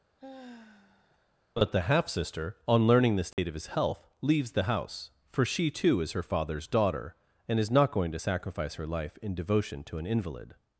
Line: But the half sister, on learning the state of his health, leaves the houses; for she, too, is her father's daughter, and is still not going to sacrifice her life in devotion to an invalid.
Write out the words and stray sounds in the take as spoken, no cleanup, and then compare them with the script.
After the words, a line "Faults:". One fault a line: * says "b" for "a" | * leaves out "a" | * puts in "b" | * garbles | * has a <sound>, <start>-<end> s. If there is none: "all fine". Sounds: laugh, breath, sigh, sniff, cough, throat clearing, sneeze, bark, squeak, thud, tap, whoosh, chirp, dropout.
But the half sister, on learning the state of his health, leaves the house; for she, too, is her father's daughter, and is not going to sacrifice her life in devotion to an invalid.
Faults:
* has a sigh, 0.2-1.3 s
* has a dropout, 3.3-3.4 s
* says "house" for "houses"
* leaves out "still"